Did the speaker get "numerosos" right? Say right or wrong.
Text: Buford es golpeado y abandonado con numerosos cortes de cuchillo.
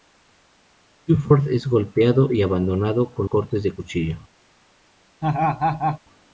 wrong